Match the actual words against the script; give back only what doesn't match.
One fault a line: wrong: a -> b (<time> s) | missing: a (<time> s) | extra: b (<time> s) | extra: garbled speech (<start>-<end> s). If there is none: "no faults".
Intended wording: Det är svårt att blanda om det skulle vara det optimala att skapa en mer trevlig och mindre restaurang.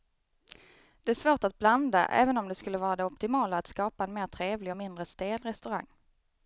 extra: även (2.0 s)
extra: stel (5.0 s)